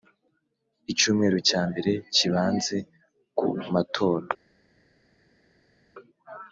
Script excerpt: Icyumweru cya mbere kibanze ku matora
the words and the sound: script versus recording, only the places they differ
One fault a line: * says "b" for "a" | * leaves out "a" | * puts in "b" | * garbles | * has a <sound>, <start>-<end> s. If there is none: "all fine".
all fine